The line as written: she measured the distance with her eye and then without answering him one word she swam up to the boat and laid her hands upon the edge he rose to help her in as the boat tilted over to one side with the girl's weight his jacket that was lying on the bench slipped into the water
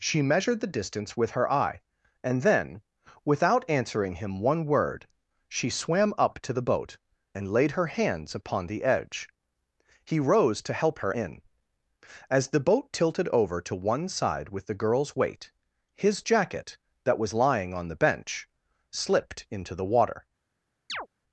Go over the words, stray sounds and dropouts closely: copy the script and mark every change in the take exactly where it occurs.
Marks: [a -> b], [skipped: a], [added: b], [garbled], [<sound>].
she measured the distance with her eye and then without answering him one word she swam up to the boat and laid her hands upon the edge he rose to help her in as the boat tilted over to one side with the girl's weight his jacket that was lying on the bench slipped into the water [chirp]